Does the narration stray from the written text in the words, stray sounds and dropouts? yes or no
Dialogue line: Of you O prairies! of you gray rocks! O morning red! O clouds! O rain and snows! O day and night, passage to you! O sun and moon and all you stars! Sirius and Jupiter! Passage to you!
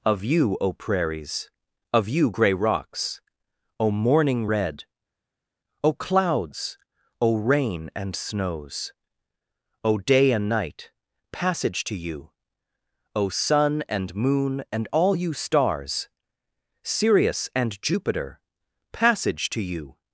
no